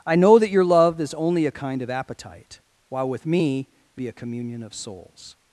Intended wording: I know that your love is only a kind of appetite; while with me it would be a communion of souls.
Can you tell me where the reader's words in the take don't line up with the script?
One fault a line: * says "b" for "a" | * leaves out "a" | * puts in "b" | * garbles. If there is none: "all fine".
* leaves out "would"